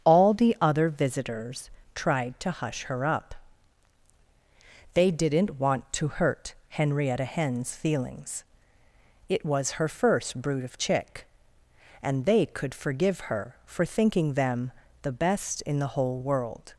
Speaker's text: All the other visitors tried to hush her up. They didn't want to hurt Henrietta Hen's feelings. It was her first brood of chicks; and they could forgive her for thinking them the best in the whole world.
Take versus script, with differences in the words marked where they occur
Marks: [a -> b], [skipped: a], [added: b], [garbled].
All the other visitors tried to hush her up. They didn't want to hurt Henrietta Hen's feelings. It was her first brood of [chicks; -> chick] and they could forgive her for thinking them the best in the whole world.